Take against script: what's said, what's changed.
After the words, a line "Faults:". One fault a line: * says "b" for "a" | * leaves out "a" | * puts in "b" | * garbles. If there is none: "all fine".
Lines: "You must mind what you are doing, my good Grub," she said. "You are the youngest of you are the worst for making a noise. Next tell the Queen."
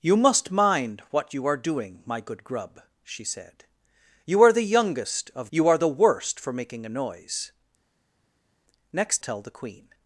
"You must mind what you are doing, my good Grub," she said. "You are the youngest of you are the worst for making a noise. Next tell the Queen."
Faults:
all fine